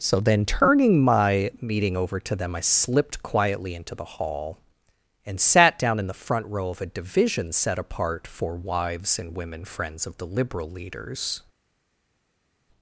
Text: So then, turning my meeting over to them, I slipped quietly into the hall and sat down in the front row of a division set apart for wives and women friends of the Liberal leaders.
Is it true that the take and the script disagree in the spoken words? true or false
false